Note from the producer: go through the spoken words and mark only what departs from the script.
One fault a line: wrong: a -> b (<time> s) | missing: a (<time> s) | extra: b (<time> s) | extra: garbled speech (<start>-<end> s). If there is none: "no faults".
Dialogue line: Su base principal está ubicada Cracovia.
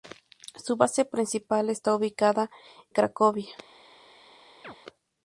no faults